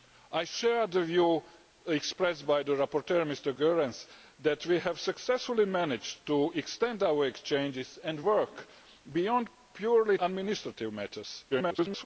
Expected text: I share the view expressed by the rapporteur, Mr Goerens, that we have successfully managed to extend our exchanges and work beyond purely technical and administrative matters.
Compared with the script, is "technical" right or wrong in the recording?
wrong